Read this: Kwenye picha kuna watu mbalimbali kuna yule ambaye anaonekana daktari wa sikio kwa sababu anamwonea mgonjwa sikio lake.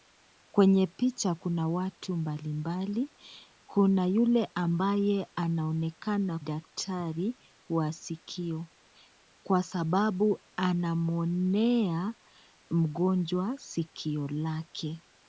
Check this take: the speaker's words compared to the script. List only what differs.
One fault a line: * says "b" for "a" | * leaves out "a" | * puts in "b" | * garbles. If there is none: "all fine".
all fine